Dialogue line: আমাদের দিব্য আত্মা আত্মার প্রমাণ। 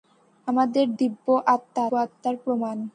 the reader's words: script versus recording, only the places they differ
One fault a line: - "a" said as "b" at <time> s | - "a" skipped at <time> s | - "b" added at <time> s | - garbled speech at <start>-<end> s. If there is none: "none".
none